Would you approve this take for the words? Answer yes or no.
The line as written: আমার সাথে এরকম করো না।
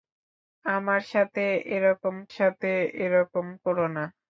no